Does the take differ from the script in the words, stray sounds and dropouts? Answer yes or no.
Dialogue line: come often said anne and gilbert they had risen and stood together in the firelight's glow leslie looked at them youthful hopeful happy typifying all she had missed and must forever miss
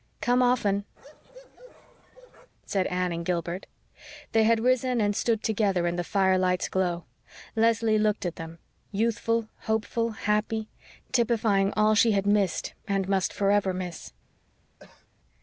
yes